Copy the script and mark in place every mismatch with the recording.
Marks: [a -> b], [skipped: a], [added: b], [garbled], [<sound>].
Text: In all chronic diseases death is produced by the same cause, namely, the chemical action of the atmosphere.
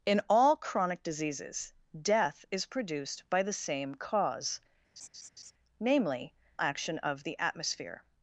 In all chronic diseases death is produced by the same cause, [laugh] namely, [skipped: the chemical] action of the atmosphere.